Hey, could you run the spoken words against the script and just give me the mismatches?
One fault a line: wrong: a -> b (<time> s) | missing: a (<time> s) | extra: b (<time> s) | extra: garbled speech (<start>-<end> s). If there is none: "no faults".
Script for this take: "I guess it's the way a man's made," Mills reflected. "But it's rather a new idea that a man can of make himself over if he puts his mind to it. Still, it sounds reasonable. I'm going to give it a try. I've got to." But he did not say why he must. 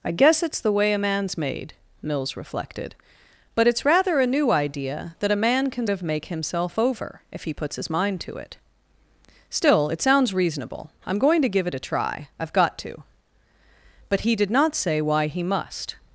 no faults